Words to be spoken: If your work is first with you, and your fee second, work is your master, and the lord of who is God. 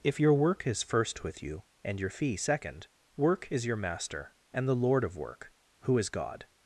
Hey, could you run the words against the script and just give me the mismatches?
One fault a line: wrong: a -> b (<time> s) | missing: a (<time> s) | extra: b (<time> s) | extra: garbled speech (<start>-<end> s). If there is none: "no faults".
extra: work (5.2 s)